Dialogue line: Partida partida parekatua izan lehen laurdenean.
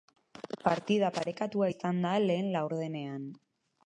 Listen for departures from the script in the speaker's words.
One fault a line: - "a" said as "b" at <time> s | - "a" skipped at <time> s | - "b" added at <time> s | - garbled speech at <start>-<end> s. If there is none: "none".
- "partida" skipped at 1.1 s
- "da" added at 2.1 s